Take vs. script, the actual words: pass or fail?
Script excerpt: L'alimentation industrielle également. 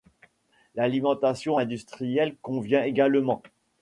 fail